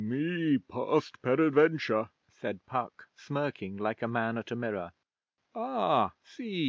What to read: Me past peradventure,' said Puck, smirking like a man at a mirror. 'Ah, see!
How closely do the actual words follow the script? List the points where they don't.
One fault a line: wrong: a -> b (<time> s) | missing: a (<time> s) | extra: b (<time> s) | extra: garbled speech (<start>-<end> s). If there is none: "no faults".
no faults